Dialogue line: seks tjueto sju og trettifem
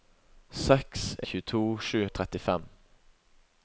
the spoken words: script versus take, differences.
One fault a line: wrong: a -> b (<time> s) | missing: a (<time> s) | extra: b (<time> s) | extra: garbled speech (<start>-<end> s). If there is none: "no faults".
no faults